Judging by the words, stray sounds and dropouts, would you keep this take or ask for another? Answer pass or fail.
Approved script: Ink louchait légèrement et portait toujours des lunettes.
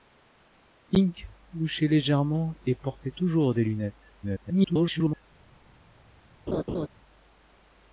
fail